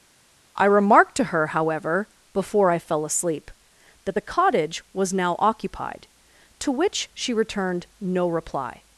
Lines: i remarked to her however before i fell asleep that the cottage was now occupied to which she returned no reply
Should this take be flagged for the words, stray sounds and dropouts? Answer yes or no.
no